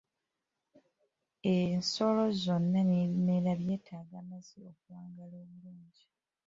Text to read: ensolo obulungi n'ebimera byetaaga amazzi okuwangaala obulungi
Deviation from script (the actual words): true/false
true